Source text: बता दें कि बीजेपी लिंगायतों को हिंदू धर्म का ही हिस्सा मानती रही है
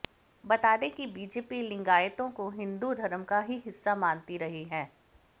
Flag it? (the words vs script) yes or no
no